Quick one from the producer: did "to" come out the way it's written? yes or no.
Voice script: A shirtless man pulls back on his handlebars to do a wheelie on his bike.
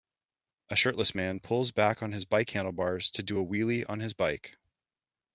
yes